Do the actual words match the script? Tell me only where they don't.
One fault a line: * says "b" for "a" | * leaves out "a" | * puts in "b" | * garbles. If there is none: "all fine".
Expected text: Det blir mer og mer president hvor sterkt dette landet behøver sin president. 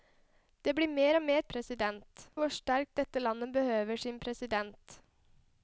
all fine